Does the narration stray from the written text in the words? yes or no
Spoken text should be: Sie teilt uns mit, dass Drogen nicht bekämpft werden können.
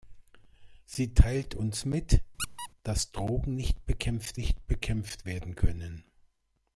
yes